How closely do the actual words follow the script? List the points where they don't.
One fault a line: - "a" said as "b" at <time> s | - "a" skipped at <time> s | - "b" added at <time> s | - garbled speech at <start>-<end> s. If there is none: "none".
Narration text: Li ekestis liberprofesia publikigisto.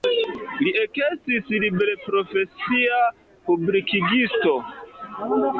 none